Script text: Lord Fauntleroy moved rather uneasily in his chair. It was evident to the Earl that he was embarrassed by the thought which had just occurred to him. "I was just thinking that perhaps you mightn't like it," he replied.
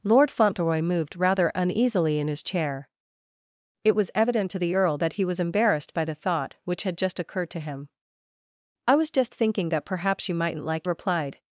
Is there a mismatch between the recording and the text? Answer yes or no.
yes